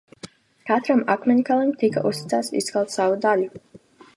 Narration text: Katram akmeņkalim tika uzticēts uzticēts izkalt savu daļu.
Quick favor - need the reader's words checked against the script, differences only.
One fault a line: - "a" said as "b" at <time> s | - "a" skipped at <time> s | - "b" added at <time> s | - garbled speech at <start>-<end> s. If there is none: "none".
- "uzticēts" skipped at 2.6 s